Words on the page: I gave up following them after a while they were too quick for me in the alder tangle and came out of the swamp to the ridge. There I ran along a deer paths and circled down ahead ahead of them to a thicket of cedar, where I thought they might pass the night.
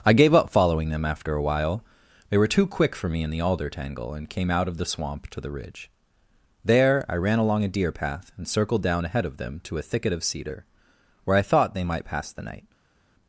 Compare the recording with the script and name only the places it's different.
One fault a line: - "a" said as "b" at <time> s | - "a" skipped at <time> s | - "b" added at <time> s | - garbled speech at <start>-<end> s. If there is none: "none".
- "paths" said as "path" at 7.9 s
- "ahead" skipped at 9.2 s